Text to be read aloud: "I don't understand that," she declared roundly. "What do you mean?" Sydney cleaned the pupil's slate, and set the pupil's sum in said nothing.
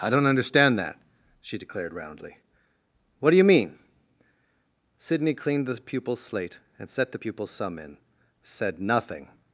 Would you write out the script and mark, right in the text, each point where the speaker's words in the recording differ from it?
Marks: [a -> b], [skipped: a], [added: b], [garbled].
"I don't understand that," she declared roundly. "What do you mean?" Sydney cleaned the pupil's slate, and set the pupil's sum in said nothing.